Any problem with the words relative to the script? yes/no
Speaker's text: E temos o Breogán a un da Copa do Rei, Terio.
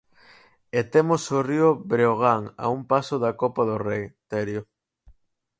yes